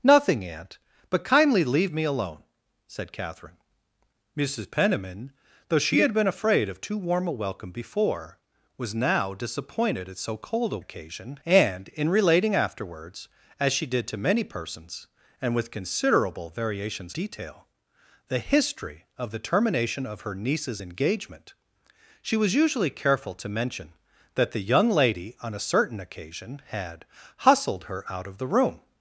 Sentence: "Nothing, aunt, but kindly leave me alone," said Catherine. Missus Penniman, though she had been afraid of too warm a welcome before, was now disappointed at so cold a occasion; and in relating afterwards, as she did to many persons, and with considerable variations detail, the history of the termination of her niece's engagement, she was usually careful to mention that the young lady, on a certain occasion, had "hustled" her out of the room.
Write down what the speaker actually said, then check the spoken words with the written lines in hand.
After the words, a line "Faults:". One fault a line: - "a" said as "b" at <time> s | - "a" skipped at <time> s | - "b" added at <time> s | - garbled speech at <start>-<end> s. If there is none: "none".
"Nothing, aunt, but kindly leave me alone," said Catherine. Missus Penniman, though she had been afraid of too warm a welcome before, was now disappointed at so cold a occasion; and in relating afterwards, as she did to many persons, and with considerable variations detail, the history of the termination of her niece's engagement, she was usually careful to mention that the young lady, on a certain occasion, had "hustled" her out of the room.
Faults:
none